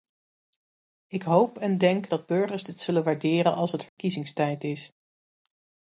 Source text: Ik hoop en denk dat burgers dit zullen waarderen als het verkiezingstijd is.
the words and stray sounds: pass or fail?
fail